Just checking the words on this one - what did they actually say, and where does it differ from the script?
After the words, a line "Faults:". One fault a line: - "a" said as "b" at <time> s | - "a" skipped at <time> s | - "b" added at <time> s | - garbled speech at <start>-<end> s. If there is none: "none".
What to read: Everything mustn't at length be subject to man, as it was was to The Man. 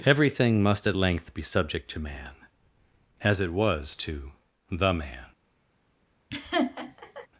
Everything must at length be subject to man, as it was to The Man.
Faults:
- "mustn't" said as "must" at 0.6 s
- "was" skipped at 3.9 s